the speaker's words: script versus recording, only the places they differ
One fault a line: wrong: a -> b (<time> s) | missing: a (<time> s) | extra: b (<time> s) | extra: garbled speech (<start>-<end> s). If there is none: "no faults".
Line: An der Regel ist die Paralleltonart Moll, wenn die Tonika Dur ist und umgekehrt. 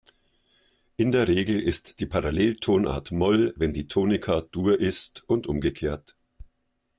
wrong: An -> In (1.0 s)